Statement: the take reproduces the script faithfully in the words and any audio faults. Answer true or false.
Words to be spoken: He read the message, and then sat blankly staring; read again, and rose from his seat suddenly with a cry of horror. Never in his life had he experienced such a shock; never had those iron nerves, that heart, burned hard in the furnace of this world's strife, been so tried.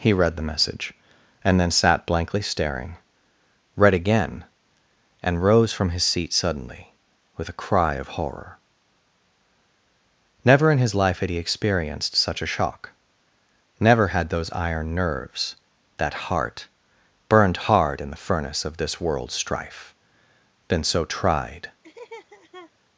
false